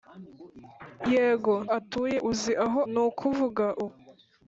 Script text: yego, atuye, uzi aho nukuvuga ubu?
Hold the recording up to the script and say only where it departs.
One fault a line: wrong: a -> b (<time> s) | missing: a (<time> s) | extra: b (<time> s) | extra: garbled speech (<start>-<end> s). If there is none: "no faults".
no faults